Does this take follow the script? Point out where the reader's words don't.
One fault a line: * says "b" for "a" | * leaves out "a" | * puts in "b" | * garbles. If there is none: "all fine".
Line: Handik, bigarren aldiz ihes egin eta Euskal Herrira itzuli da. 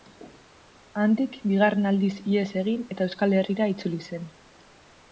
* says "zen" for "da"